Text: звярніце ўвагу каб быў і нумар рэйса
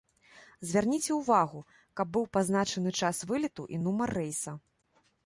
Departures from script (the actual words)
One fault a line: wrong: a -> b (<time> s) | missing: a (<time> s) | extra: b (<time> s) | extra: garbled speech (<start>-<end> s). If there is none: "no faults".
extra: пазначаны час вылету (2.4 s)